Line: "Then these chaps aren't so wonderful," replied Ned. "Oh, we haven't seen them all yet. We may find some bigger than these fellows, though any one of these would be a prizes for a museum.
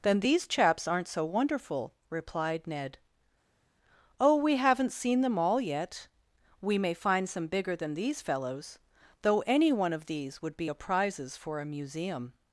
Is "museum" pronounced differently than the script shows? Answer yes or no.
no